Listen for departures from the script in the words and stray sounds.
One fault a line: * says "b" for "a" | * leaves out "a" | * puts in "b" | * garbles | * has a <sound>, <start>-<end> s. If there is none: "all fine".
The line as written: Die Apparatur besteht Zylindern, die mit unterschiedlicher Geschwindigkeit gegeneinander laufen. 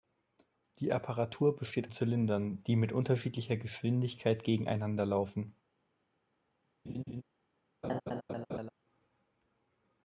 * has a laugh, 6.9-7.2 s
* has a laugh, 7.8-8.7 s